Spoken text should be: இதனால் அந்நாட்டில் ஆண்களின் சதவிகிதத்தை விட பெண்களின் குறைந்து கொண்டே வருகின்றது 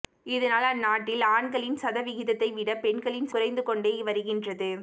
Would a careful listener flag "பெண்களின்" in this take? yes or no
no